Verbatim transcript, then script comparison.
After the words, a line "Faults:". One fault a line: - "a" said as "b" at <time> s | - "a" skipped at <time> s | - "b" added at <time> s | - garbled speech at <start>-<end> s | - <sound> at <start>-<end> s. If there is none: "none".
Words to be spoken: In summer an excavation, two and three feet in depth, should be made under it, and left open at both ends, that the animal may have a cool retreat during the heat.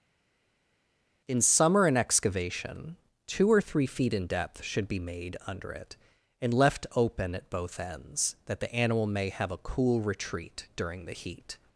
In summer an excavation, two or three feet in depth, should be made under it, and left open at both ends, that the animal may have a cool retreat during the heat.
Faults:
- "and" said as "or" at 3.5 s